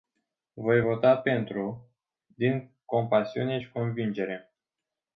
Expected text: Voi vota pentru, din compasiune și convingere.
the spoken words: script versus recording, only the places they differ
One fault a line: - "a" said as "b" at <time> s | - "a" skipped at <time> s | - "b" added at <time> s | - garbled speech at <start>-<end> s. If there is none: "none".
none